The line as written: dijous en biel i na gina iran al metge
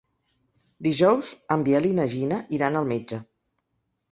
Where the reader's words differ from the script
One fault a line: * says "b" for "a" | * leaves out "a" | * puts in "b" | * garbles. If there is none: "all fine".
all fine